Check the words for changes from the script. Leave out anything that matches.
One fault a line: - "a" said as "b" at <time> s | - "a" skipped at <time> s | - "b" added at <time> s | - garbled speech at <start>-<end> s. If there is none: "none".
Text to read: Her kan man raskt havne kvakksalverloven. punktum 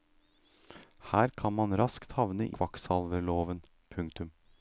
none